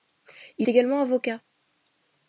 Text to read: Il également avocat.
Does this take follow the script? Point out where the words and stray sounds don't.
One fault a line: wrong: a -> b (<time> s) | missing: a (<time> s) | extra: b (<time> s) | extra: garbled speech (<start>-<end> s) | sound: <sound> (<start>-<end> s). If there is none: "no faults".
no faults